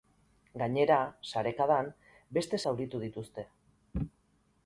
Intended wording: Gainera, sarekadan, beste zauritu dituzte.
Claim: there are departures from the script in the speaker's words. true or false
false